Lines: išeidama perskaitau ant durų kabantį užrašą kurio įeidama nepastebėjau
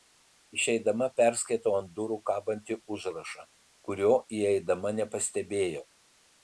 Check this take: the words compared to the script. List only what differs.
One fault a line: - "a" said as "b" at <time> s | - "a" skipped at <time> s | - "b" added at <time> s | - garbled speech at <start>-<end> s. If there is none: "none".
none